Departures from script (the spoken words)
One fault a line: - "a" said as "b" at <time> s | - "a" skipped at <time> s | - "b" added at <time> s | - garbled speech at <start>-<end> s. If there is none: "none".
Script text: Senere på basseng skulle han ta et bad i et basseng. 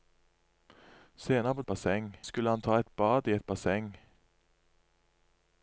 none